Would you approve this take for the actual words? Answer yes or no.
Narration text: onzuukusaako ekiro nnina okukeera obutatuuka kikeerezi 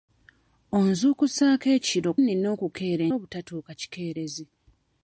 yes